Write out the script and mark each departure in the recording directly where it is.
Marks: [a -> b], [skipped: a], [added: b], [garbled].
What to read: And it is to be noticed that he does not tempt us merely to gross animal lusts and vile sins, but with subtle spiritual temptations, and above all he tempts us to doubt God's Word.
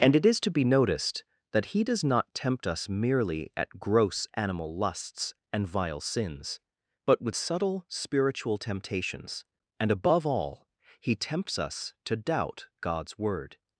And it is to be noticed that he does not tempt us merely [to -> at] gross animal lusts and vile sins, but with subtle spiritual temptations, and above all he tempts us to doubt God's Word.